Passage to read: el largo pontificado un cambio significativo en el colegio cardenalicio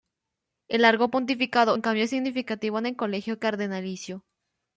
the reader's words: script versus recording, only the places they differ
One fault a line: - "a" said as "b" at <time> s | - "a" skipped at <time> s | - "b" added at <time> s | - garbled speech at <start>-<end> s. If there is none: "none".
none